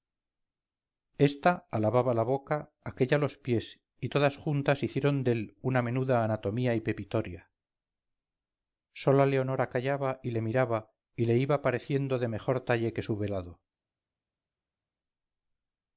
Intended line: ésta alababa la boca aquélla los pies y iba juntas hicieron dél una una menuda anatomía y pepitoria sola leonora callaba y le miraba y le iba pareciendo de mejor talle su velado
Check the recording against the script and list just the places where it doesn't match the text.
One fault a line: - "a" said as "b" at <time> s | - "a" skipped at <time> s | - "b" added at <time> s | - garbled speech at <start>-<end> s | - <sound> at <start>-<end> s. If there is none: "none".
- "iba" said as "todas" at 4.1 s
- "una" skipped at 5.8 s
- "que" added at 12.9 s